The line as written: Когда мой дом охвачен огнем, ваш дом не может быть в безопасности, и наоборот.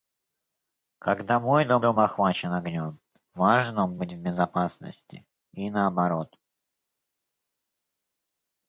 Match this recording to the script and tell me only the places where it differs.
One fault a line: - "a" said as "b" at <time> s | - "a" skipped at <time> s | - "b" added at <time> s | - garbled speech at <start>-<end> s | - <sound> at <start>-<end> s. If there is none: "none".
- "дом" added at 1.8 s
- "не может" skipped at 4.0 s